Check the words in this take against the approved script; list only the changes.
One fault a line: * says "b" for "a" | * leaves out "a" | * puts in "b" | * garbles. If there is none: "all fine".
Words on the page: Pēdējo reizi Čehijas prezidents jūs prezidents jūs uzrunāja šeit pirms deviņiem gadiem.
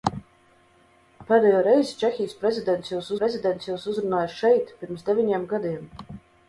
all fine